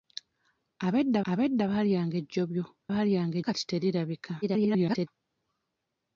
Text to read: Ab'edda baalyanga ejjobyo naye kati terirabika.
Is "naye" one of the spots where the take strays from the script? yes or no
yes